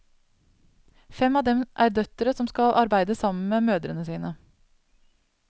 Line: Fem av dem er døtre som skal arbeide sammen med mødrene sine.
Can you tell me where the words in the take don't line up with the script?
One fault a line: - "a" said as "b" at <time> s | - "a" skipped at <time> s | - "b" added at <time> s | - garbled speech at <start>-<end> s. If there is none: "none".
none